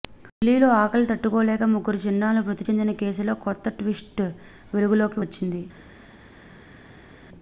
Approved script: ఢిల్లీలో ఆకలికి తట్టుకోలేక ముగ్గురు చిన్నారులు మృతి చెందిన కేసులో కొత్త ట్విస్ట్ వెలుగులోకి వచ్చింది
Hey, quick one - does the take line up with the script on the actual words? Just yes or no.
yes